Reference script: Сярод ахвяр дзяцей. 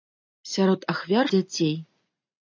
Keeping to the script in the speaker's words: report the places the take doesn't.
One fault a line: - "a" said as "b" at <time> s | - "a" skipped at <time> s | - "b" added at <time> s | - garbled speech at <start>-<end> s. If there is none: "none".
none